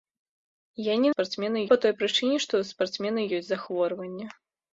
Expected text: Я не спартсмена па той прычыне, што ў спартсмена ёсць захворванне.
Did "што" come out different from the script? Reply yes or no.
no